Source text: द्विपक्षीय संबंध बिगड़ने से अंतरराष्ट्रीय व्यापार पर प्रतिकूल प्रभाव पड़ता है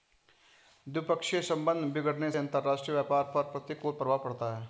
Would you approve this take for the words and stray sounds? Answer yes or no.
no